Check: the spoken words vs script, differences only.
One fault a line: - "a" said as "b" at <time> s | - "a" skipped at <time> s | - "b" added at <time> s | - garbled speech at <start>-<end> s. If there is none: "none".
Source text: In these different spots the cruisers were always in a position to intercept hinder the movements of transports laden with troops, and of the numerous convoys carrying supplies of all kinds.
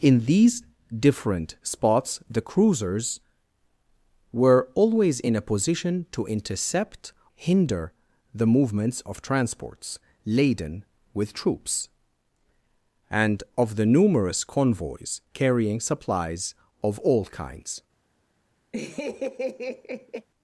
none